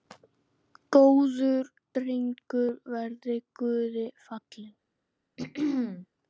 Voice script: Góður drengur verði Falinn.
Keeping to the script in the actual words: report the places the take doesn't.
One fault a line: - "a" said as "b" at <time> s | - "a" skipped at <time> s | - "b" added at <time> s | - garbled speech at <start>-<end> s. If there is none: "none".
- "Guði" added at 3.6 s